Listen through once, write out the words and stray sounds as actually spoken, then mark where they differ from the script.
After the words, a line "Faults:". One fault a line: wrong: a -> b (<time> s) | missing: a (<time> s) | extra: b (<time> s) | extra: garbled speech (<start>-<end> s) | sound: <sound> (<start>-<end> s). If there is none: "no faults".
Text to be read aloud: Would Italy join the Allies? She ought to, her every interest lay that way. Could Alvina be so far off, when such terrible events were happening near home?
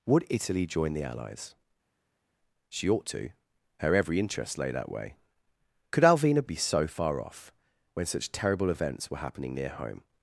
Would Italy join the Allies? She ought to, her every interest lay that way. Could Alvina be so far off, when such terrible events were happening near home?
Faults:
no faults